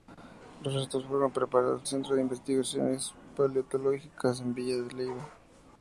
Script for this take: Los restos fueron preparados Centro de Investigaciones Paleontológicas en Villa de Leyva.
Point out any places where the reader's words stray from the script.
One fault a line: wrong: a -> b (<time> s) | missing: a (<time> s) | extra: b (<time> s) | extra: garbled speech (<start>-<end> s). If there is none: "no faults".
no faults